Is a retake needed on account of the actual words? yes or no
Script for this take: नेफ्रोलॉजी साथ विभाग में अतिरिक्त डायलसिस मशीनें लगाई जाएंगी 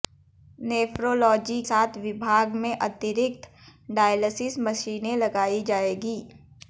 no